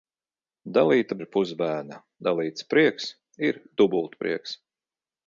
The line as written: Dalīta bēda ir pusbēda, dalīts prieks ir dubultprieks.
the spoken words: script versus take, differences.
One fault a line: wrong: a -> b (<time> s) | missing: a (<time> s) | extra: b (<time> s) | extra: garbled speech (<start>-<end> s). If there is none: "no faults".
missing: bēda (1.2 s)